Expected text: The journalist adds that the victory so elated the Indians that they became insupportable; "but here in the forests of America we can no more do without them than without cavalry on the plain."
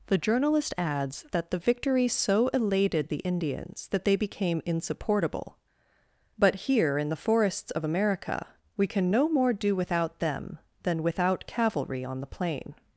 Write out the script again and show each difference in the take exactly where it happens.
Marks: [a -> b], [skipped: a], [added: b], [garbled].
The journalist adds that the victory so elated the Indians that they became insupportable; "but here in the forests of America we can no more do without them than without cavalry on the plain."